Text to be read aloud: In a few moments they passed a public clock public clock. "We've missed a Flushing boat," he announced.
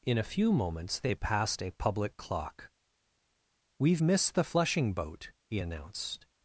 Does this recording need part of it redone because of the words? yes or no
yes